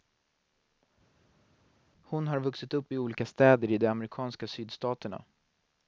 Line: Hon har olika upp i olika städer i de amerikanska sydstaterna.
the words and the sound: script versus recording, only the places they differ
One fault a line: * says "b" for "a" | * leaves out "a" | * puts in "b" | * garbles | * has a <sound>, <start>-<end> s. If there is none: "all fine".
* says "vuxit" for "olika"